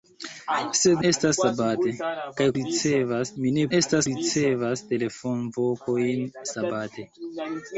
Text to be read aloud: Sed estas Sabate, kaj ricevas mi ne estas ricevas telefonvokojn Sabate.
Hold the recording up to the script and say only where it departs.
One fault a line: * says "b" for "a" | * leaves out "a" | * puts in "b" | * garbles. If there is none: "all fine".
all fine